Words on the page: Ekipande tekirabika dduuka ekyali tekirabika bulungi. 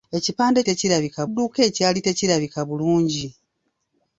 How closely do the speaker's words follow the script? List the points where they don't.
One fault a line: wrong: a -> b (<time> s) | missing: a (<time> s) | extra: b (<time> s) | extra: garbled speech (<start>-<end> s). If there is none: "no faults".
no faults